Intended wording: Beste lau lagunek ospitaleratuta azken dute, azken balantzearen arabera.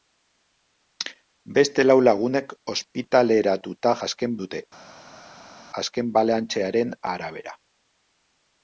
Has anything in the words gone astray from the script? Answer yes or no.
no